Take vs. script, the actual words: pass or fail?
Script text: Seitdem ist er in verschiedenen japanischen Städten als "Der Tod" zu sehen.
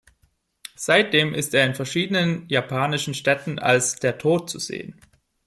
pass